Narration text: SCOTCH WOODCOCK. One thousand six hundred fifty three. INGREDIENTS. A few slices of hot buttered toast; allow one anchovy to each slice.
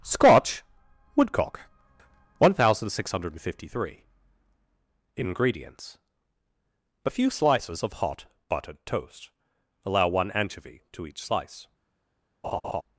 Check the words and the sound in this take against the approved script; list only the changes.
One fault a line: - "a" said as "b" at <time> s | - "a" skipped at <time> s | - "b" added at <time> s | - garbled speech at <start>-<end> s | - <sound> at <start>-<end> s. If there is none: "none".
- laugh at 12.4-12.8 s